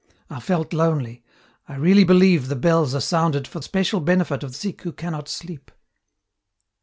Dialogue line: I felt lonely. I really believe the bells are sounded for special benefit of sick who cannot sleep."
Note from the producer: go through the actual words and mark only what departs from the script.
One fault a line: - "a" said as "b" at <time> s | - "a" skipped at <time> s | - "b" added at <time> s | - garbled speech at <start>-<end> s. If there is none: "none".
none